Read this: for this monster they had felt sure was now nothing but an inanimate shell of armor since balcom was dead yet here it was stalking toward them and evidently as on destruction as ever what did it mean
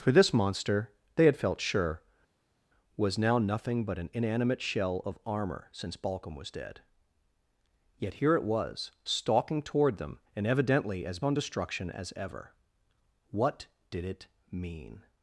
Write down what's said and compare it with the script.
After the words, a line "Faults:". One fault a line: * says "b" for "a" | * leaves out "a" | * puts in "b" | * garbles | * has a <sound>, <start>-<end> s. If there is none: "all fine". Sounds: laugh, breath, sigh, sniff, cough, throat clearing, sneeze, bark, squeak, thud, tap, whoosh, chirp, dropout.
for this monster they had felt sure was now nothing but an inanimate shell of armor since balcom was dead yet here it was stalking toward them and evidently as on destruction as ever what did it mean
Faults:
all fine